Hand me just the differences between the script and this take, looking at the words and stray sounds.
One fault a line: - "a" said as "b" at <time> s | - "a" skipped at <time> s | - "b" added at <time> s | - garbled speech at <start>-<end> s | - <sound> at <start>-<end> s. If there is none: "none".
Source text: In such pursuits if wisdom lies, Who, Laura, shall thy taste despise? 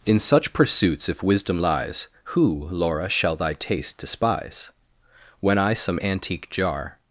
- "When I some antique Jar" added at 5.4 s